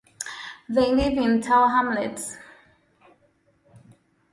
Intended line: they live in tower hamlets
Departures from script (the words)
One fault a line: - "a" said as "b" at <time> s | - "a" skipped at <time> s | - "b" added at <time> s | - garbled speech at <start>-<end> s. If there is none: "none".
none